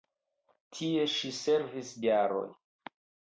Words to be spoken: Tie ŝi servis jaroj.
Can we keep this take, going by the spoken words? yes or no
yes